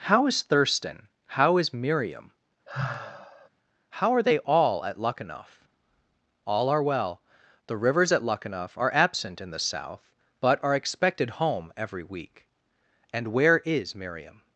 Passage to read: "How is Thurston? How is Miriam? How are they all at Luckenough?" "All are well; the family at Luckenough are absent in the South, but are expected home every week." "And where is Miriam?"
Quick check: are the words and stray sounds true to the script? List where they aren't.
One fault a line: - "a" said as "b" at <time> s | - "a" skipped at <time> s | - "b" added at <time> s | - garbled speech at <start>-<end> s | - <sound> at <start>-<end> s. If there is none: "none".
- sigh at 2.7-3.5 s
- "family" said as "rivers" at 7.8 s